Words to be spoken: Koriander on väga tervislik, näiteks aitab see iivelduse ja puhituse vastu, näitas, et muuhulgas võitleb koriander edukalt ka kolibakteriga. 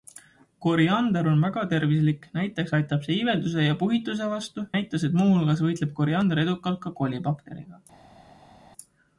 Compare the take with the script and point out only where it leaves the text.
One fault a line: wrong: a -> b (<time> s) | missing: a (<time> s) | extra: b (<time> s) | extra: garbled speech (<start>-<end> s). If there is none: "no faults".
no faults